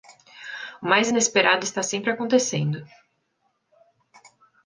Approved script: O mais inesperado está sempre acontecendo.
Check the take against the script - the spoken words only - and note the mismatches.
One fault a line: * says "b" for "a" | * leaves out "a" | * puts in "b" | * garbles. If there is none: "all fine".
all fine